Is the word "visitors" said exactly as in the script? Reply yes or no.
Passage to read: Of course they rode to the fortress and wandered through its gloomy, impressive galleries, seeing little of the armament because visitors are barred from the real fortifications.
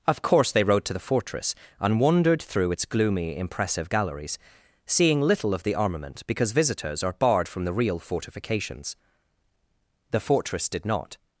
yes